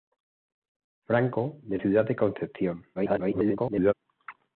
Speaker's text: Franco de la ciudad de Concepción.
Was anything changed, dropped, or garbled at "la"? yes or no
yes